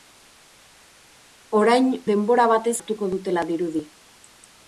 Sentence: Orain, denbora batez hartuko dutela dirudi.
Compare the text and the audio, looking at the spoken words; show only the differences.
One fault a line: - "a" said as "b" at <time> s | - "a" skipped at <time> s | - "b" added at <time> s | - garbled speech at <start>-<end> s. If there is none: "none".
none